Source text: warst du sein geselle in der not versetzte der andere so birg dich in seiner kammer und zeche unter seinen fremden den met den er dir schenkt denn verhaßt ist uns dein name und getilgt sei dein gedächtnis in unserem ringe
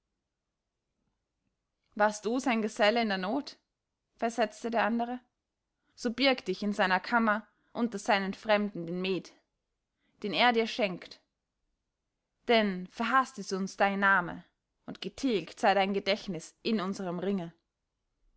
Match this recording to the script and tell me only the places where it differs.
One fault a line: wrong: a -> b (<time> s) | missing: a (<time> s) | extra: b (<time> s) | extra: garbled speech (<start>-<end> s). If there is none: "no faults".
missing: und zeche (7.4 s)